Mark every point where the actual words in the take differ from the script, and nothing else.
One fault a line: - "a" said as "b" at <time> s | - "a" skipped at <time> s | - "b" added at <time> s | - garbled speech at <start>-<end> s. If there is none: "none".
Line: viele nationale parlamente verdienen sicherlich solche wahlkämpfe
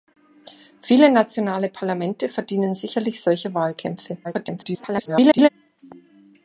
- garbled speech at 4.2-5.5 s